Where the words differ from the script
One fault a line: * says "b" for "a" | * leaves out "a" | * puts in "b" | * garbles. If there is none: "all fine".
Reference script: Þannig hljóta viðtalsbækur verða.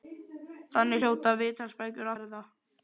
all fine